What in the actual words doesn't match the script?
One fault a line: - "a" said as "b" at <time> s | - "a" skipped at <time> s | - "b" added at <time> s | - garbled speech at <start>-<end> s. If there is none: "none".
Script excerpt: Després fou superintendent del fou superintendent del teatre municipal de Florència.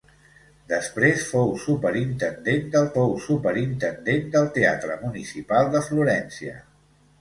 none